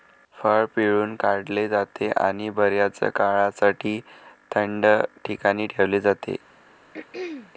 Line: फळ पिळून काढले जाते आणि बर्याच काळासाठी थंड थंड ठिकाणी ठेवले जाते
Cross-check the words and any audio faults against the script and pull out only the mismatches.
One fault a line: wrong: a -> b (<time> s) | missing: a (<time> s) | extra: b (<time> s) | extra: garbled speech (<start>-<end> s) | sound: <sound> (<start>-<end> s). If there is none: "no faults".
missing: थंड (4.9 s)
sound: throat clearing (6.9-7.5 s)